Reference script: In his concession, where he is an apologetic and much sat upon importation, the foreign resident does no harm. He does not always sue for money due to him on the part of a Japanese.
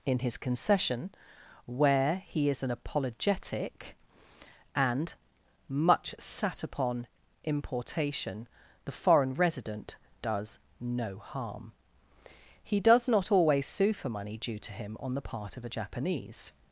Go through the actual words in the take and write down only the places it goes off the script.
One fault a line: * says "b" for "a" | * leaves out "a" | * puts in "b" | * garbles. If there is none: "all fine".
all fine